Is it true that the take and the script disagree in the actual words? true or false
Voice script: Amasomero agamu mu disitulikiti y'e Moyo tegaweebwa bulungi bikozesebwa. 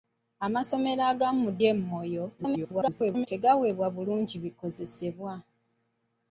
true